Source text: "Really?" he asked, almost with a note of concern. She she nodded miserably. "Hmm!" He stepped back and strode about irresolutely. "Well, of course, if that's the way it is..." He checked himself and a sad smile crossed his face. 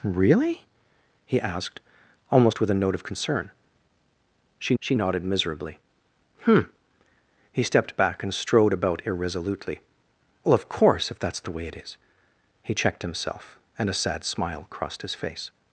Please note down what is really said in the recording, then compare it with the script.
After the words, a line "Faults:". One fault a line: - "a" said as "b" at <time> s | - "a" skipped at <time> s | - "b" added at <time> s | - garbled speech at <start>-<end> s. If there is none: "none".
"Really?" he asked, almost with a note of concern. She she nodded miserably. "Hmm!" He stepped back and strode about irresolutely. "Well, of course, if that's the way it is..." He checked himself and a sad smile crossed his face.
Faults:
none